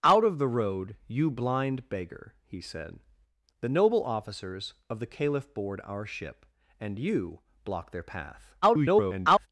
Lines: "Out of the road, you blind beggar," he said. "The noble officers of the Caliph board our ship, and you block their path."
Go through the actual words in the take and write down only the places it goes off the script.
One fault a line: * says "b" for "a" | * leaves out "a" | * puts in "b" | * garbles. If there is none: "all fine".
* garbles